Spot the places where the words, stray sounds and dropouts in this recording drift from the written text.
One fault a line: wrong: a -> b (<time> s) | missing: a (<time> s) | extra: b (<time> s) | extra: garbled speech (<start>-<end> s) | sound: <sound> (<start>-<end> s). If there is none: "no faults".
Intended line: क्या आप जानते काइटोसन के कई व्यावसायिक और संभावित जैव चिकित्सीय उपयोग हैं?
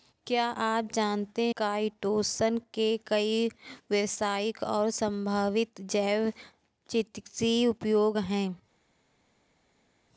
no faults